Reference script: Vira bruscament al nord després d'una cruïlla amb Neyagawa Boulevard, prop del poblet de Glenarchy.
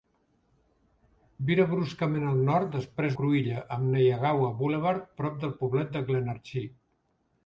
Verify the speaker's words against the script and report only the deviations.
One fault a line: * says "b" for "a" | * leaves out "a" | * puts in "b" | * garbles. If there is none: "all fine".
* leaves out "d'una"